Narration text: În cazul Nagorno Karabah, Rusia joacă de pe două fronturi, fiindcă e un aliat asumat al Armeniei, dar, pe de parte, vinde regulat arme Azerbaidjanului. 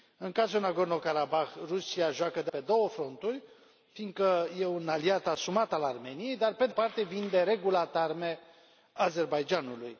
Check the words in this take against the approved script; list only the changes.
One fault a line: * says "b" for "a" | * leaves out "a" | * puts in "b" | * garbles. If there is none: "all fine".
all fine